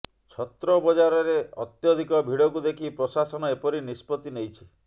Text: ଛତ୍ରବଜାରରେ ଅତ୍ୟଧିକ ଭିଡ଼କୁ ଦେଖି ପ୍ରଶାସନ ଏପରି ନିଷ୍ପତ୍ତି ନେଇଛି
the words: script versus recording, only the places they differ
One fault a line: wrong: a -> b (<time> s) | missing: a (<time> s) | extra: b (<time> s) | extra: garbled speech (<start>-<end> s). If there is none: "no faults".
no faults